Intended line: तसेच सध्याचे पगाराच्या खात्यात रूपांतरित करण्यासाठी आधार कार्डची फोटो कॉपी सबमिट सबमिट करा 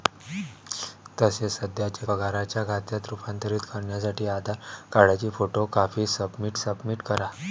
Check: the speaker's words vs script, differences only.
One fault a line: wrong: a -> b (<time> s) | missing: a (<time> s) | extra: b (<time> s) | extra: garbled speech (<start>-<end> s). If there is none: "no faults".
no faults